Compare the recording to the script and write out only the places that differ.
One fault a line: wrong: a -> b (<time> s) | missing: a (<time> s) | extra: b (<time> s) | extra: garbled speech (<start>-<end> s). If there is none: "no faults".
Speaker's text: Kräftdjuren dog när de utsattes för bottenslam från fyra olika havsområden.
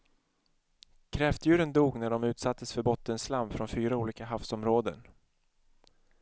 no faults